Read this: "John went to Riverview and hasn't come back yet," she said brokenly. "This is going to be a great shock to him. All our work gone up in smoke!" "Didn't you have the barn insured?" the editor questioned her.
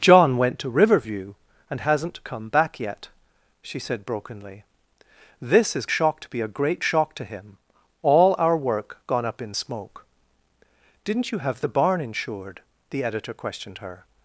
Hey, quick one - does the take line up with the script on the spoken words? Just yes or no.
no